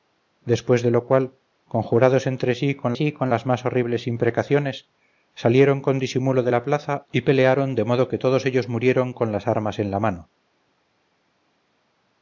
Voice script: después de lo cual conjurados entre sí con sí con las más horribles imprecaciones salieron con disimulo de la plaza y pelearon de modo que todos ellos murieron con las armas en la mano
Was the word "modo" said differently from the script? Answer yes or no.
no